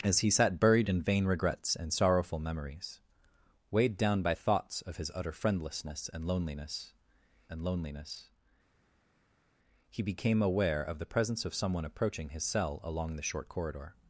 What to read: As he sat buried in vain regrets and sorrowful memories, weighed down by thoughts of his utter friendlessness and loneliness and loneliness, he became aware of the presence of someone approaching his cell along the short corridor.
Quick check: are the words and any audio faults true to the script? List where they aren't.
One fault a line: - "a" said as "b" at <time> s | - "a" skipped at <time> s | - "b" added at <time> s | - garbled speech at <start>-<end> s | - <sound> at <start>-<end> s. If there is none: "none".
none